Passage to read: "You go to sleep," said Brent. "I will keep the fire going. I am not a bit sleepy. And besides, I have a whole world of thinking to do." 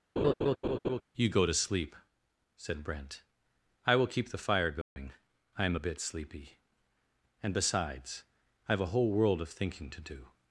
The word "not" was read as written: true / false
false